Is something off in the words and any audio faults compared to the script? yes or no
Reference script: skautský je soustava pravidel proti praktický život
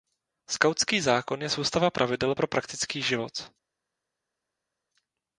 yes